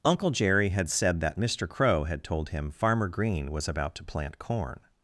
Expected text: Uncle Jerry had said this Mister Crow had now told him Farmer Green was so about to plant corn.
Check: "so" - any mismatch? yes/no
yes